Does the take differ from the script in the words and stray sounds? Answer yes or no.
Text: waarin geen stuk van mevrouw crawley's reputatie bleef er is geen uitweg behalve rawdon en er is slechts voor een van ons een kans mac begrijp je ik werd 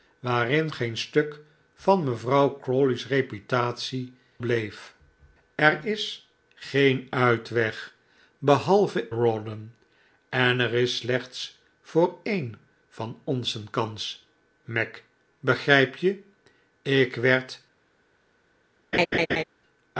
yes